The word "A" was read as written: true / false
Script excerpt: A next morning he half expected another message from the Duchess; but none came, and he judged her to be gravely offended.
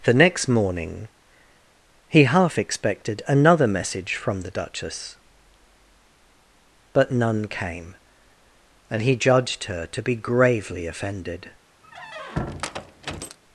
false